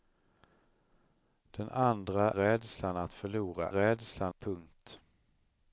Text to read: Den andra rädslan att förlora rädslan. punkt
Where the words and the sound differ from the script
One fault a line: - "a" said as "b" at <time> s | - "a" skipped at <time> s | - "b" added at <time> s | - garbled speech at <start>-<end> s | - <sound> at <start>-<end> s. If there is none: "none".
none